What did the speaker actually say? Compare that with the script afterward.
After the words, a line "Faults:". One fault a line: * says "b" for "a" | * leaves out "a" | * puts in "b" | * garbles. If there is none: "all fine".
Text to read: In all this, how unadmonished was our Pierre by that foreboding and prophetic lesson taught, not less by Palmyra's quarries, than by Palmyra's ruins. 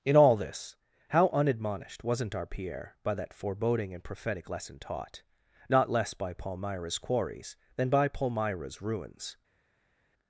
In all this, how unadmonished wasn't our Pierre by that foreboding and prophetic lesson taught, not less by Palmyra's quarries, than by Palmyra's ruins.
Faults:
* says "wasn't" for "was"